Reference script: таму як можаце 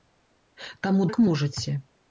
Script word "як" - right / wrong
right